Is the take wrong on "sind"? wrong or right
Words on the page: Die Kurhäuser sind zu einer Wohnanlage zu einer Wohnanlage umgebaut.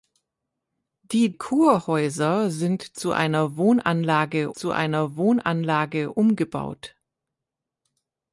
right